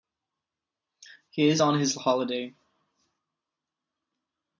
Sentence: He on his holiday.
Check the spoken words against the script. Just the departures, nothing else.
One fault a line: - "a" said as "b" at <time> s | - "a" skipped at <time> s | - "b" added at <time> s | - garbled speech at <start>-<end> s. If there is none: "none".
- "is" added at 1.5 s